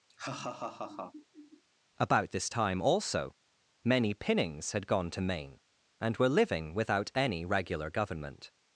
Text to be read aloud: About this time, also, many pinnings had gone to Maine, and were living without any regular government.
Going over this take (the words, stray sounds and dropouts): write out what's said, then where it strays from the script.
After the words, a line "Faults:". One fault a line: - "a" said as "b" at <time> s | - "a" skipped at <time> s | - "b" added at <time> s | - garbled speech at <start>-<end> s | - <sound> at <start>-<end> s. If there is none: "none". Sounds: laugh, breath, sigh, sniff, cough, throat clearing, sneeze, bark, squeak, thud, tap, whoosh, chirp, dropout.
About this time, also, many pinnings had gone to Maine, and were living without any regular government.
Faults:
- laugh at 0.1-1.6 s